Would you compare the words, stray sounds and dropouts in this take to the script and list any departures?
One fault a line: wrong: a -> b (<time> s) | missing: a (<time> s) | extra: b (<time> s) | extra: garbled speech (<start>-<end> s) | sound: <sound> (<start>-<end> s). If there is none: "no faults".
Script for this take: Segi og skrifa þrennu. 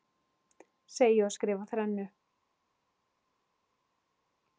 no faults